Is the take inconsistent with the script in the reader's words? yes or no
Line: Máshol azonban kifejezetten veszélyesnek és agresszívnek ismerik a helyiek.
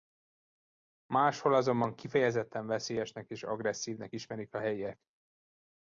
no